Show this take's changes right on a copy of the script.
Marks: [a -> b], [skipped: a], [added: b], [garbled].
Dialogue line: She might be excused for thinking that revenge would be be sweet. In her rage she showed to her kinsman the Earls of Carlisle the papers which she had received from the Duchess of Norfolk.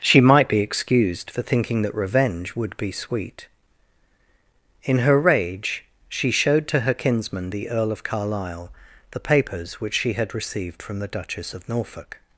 She might be excused for thinking that revenge would be [skipped: be] sweet. In her rage she showed to her kinsman the [Earls -> Earl] of Carlisle the papers which she had received from the Duchess of Norfolk.